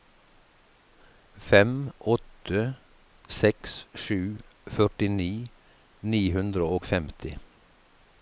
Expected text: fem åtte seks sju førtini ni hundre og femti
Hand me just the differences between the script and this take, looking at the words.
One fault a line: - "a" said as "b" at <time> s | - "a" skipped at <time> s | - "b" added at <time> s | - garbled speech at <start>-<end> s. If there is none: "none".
none